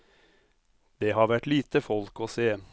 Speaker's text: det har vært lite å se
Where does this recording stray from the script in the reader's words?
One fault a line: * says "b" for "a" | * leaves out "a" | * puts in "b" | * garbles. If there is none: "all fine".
* puts in "folk"